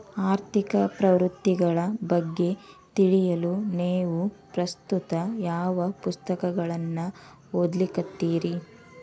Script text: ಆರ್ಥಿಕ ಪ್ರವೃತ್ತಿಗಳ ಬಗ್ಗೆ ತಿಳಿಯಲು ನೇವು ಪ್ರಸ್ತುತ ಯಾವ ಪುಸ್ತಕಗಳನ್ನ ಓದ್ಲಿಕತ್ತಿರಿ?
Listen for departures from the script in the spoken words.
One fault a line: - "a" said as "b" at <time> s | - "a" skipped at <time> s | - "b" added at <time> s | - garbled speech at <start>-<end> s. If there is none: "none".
none